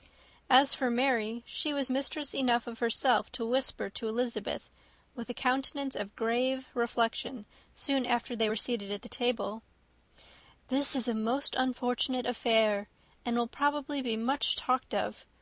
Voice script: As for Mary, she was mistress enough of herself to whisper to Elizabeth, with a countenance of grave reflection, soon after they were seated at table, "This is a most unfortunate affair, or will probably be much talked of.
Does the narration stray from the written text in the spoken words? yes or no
yes